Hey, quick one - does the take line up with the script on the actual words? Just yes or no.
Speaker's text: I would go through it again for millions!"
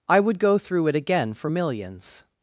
yes